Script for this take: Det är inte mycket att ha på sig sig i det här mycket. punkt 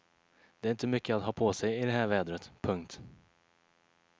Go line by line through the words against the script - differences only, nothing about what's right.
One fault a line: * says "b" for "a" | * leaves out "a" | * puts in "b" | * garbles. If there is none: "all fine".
* leaves out "sig"
* says "vädret" for "mycket"